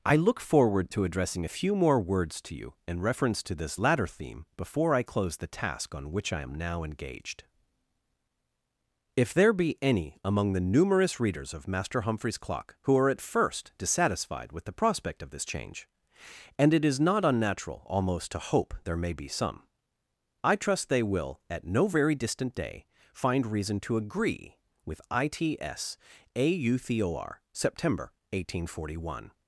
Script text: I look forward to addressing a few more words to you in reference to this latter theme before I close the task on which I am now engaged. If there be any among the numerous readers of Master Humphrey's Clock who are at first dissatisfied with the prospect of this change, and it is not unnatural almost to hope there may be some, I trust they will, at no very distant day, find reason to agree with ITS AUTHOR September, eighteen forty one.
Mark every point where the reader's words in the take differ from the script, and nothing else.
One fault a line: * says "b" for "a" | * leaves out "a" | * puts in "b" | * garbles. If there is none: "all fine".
all fine